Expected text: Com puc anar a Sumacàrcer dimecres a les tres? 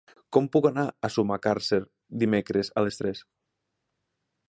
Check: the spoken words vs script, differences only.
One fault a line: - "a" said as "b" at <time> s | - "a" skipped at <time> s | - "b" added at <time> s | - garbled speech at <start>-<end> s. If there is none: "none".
none